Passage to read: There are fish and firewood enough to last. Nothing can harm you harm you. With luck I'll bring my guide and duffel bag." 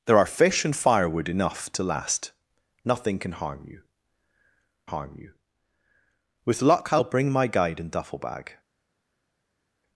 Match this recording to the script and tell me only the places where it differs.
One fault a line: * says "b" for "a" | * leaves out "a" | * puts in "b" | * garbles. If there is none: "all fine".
all fine